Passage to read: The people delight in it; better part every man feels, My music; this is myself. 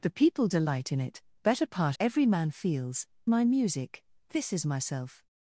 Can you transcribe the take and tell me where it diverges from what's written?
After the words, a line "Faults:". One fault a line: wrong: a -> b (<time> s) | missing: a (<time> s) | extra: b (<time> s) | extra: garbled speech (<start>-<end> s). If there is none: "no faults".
The people delight in it; better part every man feels, My music; this is myself.
Faults:
no faults